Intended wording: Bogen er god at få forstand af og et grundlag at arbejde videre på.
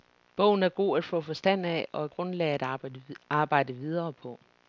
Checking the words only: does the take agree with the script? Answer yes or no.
yes